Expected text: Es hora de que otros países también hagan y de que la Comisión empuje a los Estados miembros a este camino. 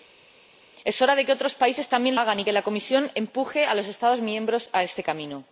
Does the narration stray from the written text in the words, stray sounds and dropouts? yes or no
no